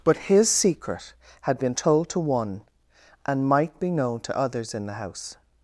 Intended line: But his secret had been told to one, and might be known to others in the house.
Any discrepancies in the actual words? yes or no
no